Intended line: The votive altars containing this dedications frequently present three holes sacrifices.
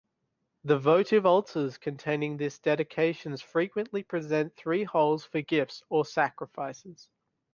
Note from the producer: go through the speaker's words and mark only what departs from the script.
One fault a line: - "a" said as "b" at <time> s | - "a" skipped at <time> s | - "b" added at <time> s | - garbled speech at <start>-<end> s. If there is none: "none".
- "for gifts or" added at 5.2 s